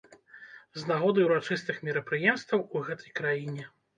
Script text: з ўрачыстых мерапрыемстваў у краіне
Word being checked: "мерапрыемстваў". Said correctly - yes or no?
yes